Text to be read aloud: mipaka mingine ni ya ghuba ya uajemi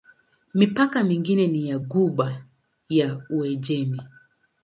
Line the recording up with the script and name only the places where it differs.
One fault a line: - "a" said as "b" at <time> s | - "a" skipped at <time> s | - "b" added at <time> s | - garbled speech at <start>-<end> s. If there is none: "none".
none